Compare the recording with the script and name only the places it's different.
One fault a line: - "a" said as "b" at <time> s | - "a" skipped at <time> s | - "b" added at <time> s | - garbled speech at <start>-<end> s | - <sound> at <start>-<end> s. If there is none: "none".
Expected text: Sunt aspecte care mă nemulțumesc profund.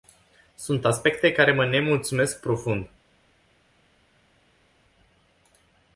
none